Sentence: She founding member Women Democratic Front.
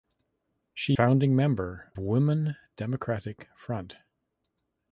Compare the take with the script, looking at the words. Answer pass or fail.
pass